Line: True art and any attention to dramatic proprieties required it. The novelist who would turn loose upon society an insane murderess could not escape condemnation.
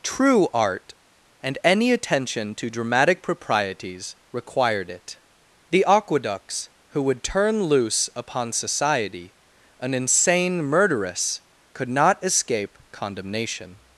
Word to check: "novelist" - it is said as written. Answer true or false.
false